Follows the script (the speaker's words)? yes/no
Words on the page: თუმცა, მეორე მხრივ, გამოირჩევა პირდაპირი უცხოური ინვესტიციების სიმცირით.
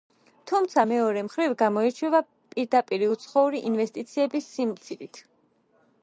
yes